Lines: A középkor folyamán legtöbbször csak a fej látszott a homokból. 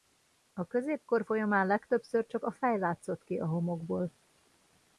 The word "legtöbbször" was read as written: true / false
true